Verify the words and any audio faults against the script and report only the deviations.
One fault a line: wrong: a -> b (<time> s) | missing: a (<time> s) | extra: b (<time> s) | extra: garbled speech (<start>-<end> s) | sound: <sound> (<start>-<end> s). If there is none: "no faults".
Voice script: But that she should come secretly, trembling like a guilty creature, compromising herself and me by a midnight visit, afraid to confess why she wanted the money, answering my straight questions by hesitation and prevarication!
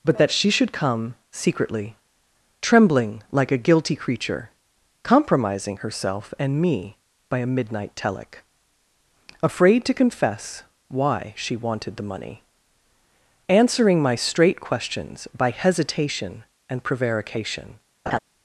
wrong: visit -> telic (8.0 s)
sound: laugh (18.1-18.2 s)